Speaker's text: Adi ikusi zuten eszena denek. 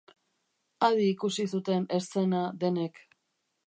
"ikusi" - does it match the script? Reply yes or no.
yes